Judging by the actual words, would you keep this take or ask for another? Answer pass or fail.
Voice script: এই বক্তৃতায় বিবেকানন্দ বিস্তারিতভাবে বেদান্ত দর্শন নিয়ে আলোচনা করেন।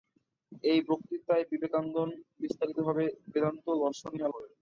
fail